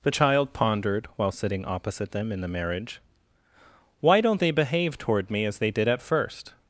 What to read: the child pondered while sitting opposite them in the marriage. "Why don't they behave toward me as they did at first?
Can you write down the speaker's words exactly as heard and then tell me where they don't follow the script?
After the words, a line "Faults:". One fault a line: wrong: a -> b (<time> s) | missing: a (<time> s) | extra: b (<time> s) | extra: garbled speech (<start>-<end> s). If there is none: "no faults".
the child pondered while sitting opposite them in the marriage. "Why don't they behave toward me as they did at first?
Faults:
no faults